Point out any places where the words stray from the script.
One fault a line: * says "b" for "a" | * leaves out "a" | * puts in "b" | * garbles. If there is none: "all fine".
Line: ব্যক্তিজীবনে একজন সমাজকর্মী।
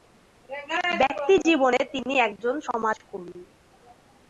* puts in "তিনি"